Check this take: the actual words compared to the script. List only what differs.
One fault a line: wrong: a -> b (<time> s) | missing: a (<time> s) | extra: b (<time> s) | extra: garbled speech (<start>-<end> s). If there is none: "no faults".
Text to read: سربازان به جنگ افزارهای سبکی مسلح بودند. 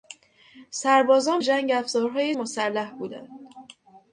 missing: به (1.4 s)
missing: سبکی (2.3 s)